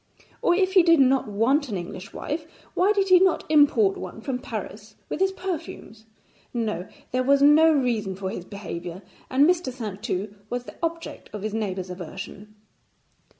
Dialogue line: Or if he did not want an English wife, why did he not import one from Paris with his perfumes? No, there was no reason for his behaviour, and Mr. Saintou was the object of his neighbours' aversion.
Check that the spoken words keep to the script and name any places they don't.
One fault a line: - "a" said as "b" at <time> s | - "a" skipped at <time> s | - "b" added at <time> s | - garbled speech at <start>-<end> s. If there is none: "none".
none